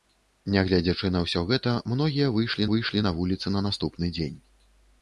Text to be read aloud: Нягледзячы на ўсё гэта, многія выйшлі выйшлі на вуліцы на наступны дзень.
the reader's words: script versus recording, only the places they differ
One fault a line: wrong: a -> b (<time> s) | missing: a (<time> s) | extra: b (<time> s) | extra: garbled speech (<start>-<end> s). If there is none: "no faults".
no faults